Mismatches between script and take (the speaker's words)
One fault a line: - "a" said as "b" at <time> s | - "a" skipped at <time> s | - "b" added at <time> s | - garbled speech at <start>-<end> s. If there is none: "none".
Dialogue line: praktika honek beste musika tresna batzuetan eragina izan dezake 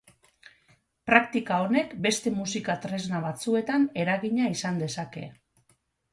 none